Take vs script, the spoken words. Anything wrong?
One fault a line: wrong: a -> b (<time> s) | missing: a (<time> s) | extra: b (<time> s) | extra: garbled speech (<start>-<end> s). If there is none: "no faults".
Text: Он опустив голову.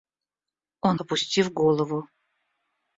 no faults